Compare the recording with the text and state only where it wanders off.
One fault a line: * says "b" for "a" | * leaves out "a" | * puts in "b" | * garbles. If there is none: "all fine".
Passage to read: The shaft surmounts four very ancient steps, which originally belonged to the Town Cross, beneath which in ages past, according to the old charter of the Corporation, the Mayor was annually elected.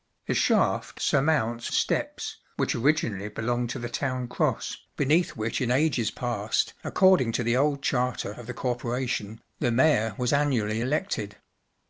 * leaves out "four very ancient"